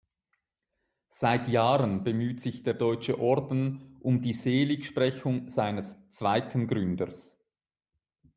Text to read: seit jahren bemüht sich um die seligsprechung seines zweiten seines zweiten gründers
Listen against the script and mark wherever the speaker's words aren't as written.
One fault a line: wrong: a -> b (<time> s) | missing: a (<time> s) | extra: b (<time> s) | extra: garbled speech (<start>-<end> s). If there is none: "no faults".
extra: der deutsche orden (2.6 s)
missing: seines zweiten (6.7 s)